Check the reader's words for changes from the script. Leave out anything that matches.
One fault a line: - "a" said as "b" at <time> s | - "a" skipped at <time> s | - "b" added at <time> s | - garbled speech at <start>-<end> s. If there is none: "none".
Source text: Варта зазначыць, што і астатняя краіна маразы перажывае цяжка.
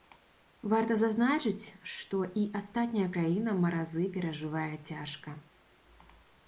none